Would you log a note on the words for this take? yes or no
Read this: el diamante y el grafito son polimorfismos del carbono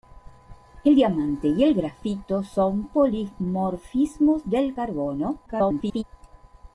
yes